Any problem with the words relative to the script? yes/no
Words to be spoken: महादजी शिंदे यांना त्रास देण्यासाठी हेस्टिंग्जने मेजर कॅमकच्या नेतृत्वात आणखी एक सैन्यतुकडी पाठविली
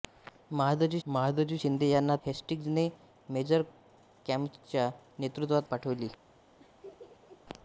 yes